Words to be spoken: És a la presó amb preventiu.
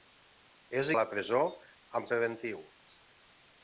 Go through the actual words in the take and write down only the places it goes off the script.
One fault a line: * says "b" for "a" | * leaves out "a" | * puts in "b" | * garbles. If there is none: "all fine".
all fine